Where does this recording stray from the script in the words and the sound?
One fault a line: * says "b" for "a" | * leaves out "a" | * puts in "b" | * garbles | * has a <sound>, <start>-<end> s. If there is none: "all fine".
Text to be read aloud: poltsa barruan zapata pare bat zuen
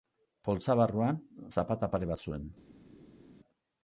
all fine